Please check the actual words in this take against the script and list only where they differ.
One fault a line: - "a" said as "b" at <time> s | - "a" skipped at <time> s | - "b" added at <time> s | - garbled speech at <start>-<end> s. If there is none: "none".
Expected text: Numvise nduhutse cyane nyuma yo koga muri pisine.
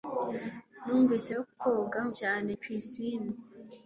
- "nduhutse cyane nyuma" skipped at 1.3 s
- "muri" said as "cyane" at 2.2 s